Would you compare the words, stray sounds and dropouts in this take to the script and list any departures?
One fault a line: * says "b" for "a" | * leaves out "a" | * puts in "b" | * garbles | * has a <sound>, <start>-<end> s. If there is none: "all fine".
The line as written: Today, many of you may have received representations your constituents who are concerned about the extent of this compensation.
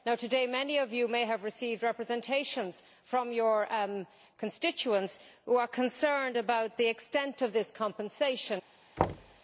* puts in "from"
* has a thud, 9.0-9.4 s